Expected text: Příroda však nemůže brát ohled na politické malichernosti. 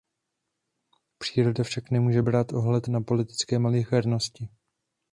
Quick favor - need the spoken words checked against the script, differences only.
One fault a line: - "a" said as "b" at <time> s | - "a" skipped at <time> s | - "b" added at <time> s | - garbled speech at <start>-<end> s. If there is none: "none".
none